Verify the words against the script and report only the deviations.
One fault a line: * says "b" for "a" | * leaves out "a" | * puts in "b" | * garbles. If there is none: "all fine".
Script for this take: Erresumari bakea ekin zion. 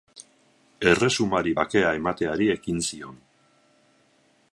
* puts in "emateari"